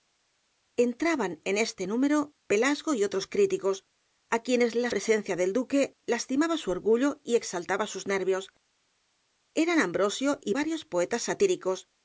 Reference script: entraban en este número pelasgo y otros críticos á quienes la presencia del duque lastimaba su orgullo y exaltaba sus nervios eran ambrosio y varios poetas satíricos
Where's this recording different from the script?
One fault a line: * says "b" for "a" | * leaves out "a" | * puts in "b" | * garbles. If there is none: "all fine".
all fine